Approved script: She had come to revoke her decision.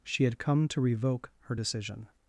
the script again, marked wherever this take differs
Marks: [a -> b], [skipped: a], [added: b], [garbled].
She had come to revoke her decision.